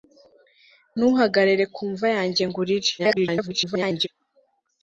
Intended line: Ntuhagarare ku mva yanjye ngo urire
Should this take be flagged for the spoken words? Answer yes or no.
yes